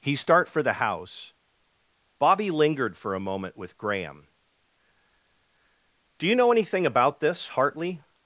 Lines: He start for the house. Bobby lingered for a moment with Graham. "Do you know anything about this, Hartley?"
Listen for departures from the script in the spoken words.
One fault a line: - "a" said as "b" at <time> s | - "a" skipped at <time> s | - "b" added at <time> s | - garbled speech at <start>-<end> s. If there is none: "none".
none